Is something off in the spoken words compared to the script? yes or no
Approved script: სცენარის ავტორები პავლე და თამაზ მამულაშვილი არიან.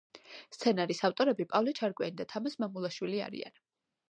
yes